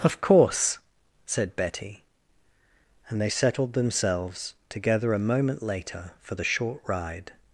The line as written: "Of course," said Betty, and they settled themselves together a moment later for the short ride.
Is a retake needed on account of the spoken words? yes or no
no